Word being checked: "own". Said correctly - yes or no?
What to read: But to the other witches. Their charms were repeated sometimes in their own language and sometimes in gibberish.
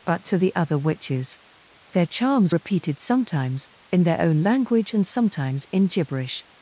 yes